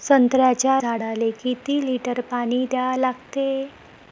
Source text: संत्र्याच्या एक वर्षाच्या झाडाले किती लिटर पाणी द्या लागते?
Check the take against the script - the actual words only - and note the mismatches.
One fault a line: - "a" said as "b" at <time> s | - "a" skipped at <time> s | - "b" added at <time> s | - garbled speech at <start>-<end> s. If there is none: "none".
- "एक वर्षाच्या" skipped at 0.8 s